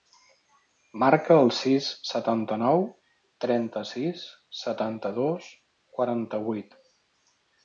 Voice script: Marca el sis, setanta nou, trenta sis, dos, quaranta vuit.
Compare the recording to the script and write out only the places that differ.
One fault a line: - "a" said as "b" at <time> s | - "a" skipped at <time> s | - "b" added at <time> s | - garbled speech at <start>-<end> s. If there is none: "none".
- "setanta" added at 4.6 s